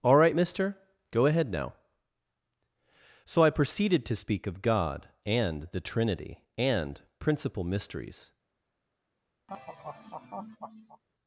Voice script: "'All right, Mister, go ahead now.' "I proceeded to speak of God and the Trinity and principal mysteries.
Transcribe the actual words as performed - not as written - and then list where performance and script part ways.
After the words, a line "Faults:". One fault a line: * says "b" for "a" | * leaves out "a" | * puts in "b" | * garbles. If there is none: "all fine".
"'All right, Mister, go ahead now.' "So I proceeded to speak of God and the Trinity and principal mysteries.
Faults:
* puts in "So"